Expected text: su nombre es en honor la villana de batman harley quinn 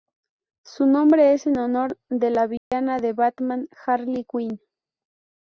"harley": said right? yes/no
yes